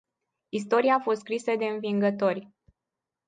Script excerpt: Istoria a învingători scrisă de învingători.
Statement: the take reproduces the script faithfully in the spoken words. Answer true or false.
false